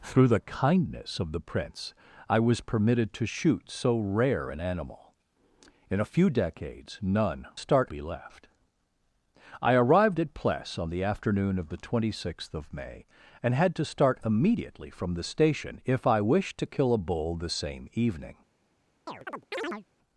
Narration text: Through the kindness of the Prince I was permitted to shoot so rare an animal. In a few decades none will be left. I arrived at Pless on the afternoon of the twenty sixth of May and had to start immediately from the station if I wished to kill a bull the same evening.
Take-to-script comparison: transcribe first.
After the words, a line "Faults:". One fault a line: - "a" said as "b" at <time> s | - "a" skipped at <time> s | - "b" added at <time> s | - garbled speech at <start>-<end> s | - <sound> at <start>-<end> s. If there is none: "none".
Through the kindness of the Prince I was permitted to shoot so rare an animal. In a few decades none start be left. I arrived at Pless on the afternoon of the twenty sixth of May and had to start immediately from the station if I wished to kill a bull the same evening.
Faults:
- "will" said as "start" at 7.5 s
- chirp at 19.1-19.9 s